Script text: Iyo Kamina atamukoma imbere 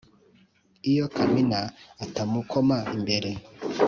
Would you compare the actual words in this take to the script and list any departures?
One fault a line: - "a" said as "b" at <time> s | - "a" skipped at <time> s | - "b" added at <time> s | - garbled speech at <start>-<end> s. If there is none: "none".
none